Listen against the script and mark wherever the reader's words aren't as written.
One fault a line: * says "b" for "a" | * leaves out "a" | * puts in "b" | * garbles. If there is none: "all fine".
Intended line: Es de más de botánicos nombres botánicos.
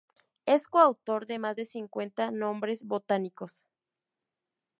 * puts in "coautor"
* says "cincuenta" for "botánicos"